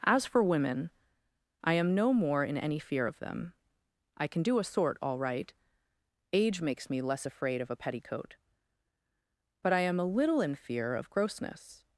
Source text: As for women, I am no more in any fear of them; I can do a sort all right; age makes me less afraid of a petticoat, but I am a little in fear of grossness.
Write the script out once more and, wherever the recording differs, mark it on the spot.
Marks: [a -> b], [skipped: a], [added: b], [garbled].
As for women, I am no more in any fear of them; I can do a sort all right; age makes me less afraid of a petticoat, but I am a little in fear of grossness.